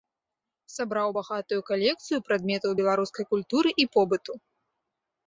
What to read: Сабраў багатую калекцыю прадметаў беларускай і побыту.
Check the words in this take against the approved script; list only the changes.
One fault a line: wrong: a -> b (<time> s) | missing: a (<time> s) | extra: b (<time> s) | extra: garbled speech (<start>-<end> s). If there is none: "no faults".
extra: культуры (3.3 s)